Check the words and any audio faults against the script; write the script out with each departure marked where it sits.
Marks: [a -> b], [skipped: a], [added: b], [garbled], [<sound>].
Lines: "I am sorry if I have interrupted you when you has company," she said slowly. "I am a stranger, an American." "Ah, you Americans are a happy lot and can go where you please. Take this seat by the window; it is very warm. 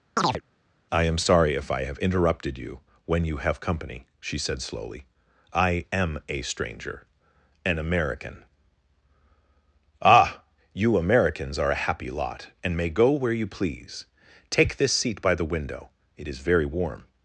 [chirp] "I am sorry if I have interrupted you when you [has -> have] company," she said slowly. "I am a stranger, an American." "Ah, you Americans are a happy lot and [can -> may] go where you please. Take this seat by the window; it is very warm.